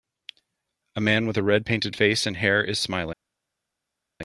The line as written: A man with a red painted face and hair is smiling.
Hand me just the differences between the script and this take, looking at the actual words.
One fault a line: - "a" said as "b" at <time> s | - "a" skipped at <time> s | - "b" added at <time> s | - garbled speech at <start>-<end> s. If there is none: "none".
none